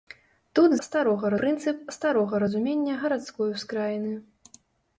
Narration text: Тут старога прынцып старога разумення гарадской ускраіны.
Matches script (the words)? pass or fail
pass